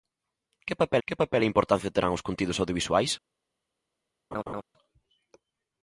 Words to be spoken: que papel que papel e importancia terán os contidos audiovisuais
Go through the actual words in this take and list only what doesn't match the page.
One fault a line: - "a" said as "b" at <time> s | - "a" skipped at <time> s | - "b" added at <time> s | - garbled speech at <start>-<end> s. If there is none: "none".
none